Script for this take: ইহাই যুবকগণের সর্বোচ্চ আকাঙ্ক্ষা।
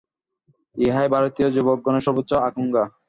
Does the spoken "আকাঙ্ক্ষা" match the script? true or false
true